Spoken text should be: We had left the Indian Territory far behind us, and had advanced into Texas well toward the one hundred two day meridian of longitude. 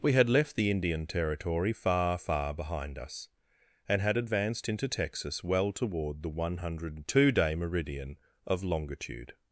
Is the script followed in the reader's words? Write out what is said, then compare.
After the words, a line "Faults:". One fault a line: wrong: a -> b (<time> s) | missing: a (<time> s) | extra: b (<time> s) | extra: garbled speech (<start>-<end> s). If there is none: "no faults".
We had left the Indian Territory far far behind us, and had advanced into Texas well toward the one hundred two day meridian of longitude.
Faults:
extra: far (2.2 s)